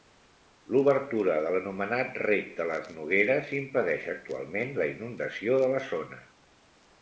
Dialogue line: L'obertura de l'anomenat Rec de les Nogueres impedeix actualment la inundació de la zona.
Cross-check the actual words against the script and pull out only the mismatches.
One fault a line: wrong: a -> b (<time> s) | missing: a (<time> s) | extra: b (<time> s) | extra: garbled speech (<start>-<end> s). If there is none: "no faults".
no faults